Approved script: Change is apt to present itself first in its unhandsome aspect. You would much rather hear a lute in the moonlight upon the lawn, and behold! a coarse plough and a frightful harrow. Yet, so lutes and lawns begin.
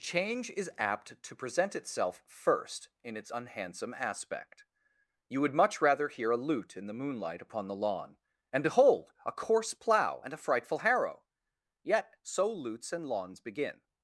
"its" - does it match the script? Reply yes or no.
yes